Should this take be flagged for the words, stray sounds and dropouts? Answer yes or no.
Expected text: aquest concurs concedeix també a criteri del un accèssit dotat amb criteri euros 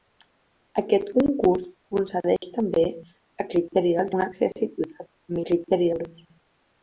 yes